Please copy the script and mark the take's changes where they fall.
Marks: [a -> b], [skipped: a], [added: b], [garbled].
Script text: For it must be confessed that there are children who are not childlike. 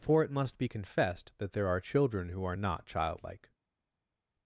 For it must be confessed that there are children who are not childlike.